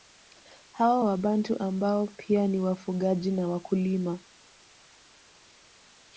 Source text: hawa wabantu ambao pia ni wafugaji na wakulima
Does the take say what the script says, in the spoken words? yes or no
yes